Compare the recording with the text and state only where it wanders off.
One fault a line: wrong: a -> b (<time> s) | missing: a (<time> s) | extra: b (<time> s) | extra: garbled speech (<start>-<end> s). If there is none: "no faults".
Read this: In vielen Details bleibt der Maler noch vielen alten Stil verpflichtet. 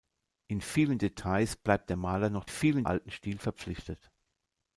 no faults